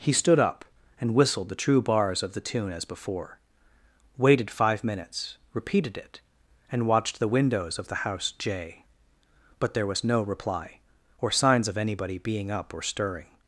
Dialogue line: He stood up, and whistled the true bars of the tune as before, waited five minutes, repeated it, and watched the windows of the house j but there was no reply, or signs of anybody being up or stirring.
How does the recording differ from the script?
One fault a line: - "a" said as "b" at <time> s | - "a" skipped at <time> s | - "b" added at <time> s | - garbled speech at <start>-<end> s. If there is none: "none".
none